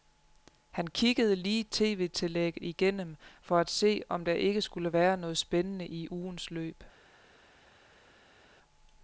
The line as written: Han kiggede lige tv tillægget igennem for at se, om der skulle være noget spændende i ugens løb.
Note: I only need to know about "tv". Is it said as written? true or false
true